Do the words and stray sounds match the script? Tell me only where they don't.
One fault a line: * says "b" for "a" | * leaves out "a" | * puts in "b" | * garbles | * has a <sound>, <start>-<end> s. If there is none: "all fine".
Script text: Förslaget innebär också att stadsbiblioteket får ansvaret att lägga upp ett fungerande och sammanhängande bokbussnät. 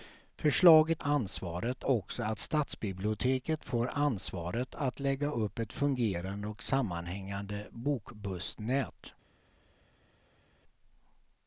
* says "ansvaret" for "innebär"